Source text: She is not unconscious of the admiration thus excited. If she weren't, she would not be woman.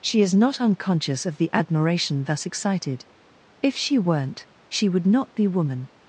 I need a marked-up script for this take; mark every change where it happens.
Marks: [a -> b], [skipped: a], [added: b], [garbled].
She is not unconscious of the admiration thus excited. If she weren't, she would not be woman.